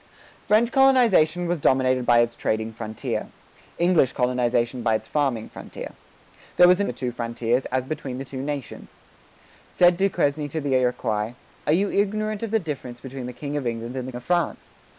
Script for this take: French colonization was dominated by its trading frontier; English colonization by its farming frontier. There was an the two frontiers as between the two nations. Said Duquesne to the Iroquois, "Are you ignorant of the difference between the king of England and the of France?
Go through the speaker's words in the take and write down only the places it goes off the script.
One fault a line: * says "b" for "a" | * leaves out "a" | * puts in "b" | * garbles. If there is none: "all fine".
all fine